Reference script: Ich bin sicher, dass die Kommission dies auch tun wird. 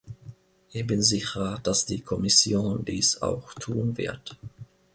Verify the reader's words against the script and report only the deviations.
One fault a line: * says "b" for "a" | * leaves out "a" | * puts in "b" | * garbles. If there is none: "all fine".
all fine